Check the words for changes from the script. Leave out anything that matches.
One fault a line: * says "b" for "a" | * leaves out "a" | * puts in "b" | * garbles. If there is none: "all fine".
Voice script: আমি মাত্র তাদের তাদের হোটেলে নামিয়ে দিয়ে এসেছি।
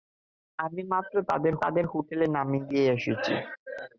all fine